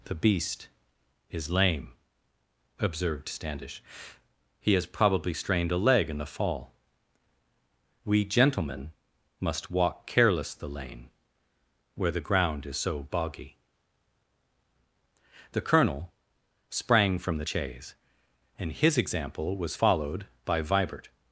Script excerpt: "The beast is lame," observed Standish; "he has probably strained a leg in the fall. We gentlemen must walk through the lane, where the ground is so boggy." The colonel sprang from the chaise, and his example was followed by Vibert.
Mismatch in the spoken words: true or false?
true